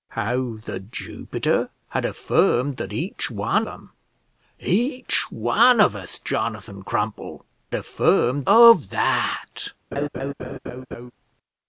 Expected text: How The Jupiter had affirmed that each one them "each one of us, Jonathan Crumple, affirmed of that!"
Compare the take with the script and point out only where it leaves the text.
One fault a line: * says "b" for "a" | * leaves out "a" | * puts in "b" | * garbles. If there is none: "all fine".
all fine